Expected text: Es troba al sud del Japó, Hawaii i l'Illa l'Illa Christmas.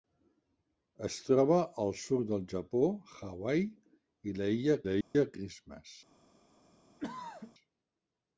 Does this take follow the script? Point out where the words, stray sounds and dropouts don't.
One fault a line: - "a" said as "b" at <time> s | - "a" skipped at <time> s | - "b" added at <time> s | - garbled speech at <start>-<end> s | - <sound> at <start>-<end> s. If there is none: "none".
- dropout at 5.0-5.1 s
- throat clearing at 7.0-7.5 s